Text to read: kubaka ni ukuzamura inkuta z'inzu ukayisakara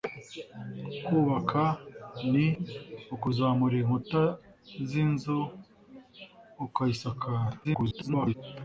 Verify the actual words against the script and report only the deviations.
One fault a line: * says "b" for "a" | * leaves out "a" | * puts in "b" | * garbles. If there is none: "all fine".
* garbles